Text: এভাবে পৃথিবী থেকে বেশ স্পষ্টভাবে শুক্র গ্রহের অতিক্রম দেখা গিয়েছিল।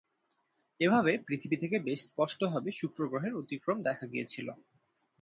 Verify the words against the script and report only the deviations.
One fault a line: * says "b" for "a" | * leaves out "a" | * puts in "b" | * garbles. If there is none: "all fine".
all fine